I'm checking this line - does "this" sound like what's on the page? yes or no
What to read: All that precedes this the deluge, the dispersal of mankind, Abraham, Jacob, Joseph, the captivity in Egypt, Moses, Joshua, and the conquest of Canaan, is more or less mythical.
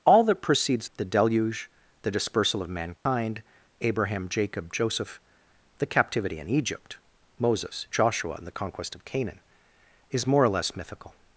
no